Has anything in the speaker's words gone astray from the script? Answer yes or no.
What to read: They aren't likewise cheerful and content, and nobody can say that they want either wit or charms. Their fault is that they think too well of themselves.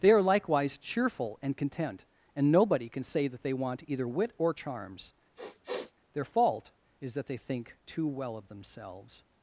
yes